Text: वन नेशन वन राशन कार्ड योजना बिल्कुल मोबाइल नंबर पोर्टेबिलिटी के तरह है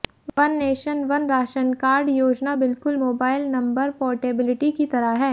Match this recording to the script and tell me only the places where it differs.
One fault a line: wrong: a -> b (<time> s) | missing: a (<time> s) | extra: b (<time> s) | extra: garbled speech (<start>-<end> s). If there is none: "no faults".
wrong: के -> की (4.7 s)